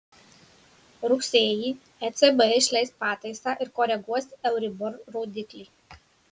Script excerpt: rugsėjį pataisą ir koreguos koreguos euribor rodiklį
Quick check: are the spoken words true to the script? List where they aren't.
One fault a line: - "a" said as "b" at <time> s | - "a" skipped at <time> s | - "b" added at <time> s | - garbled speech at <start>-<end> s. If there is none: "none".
- "ecb išleis" added at 2.1 s
- "koreguos" skipped at 4.3 s